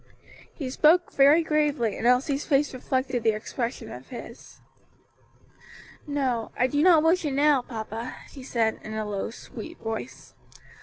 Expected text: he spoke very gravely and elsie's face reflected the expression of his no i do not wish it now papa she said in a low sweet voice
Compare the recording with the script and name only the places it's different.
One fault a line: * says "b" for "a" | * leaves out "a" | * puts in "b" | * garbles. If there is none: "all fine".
all fine